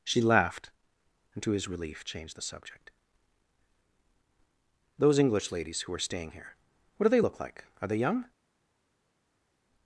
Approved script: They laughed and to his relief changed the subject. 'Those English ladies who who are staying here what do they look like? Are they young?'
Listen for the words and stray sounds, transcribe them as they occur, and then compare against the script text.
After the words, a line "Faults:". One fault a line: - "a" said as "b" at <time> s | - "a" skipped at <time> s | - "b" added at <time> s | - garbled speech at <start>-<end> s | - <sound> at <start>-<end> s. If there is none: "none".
She laughed and to his relief changed the subject. 'Those English ladies who are staying here what do they look like? Are they young?'
Faults:
- "They" said as "She" at 0.0 s
- "who" skipped at 5.9 s